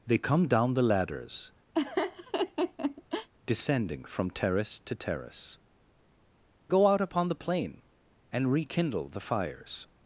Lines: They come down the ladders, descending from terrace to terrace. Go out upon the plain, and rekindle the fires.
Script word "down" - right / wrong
right